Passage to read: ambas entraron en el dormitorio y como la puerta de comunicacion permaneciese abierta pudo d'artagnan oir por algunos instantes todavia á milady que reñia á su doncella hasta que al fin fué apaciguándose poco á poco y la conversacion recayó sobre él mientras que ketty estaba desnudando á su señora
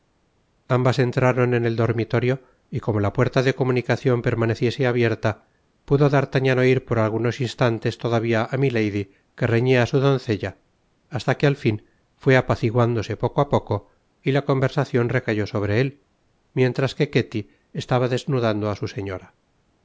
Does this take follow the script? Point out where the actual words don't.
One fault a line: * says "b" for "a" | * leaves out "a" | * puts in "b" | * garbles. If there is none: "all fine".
all fine